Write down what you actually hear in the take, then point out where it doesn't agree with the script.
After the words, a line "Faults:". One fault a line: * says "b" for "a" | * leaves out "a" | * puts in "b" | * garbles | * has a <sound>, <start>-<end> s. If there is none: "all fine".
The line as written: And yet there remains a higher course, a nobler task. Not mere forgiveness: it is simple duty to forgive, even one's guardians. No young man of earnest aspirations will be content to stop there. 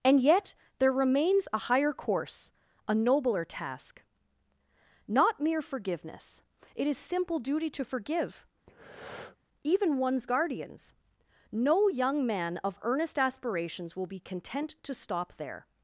And yet there remains a higher course, a nobler task. Not mere forgiveness: it is simple duty to forgive, even one's guardians. No young man of earnest aspirations will be content to stop there.
Faults:
* has a breath, 8.7-9.4 s